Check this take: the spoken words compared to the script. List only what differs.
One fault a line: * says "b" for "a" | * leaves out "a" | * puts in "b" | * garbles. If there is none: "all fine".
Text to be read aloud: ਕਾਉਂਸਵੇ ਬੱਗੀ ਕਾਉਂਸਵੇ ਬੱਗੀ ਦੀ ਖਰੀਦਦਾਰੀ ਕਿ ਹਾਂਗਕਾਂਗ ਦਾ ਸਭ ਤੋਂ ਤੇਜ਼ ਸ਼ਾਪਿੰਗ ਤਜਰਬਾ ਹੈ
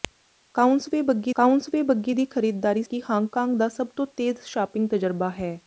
all fine